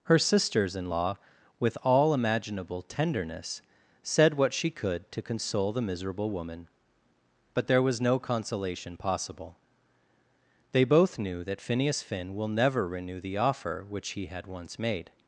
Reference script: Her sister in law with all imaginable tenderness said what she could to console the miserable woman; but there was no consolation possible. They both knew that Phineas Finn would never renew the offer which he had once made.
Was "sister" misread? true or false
true